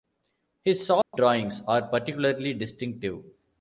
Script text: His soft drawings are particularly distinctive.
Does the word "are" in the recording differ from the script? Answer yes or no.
no